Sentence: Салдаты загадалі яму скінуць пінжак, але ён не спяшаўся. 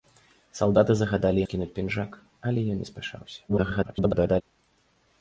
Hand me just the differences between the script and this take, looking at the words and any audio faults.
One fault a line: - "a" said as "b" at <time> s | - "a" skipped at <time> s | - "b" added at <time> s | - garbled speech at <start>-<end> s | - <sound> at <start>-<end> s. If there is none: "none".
- "яму" skipped at 1.4 s
- garbled speech at 3.5-4.4 s